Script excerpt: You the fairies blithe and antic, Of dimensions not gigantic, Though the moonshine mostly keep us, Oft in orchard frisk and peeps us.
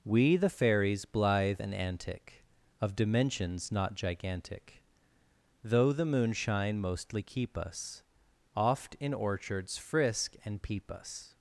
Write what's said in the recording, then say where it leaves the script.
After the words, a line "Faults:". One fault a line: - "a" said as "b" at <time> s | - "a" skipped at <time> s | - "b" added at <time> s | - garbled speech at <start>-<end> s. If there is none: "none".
We the fairies blithe and antic, Of dimensions not gigantic, Though the moonshine mostly keep us, Oft in orchards frisk and peep us.
Faults:
- "You" said as "We" at 0.0 s
- "orchard" said as "orchards" at 9.1 s
- "peeps" said as "peep" at 10.6 s